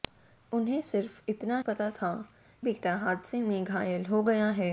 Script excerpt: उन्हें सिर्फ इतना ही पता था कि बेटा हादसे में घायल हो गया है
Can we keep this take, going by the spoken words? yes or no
no